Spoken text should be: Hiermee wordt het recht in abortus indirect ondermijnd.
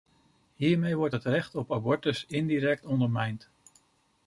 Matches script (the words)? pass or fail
fail